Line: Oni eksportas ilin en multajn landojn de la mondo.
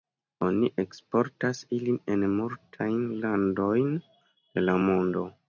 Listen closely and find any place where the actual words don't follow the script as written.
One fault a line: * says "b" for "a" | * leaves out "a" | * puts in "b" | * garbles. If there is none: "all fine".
all fine